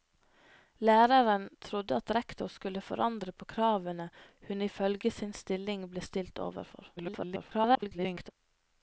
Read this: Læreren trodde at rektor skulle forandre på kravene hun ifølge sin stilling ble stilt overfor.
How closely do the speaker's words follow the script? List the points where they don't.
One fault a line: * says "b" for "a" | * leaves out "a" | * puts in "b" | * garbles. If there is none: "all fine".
* garbles